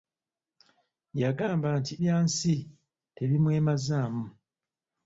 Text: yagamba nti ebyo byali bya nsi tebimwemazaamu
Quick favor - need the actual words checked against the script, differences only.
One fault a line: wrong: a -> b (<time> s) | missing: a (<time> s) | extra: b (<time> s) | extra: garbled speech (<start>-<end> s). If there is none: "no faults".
missing: ebyo byali (1.9 s)